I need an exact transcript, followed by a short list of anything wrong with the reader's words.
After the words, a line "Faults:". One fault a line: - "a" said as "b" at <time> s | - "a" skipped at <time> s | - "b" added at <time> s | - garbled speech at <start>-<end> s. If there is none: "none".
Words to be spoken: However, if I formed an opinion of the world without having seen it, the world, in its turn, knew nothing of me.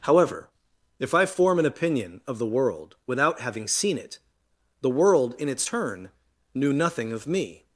However, if I form an opinion of the world without having seen it, the world, in its turn, knew nothing of me.
Faults:
- "formed" said as "form" at 1.2 s